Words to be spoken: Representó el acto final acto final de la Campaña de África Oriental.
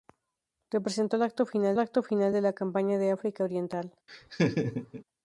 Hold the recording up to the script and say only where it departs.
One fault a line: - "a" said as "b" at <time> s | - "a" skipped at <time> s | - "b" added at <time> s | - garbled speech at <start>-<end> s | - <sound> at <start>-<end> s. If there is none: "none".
- laugh at 4.1-5.0 s